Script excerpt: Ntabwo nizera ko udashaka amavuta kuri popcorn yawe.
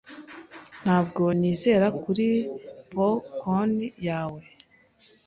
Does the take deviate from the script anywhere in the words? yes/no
yes